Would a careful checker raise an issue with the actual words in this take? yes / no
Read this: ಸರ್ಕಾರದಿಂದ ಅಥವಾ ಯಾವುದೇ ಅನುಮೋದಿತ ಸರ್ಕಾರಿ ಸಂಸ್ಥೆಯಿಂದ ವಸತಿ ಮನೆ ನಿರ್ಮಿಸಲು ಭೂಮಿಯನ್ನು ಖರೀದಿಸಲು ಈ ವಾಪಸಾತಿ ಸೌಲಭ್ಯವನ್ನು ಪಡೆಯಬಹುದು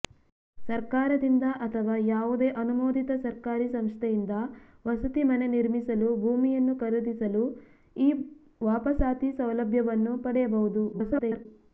yes